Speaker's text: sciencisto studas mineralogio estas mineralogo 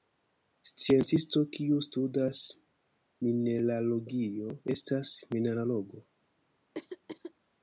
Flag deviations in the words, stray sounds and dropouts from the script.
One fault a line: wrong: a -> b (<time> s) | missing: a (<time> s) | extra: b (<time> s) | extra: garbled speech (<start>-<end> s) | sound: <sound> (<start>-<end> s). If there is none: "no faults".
extra: kiu (1.6 s)
sound: throat clearing (6.7-7.3 s)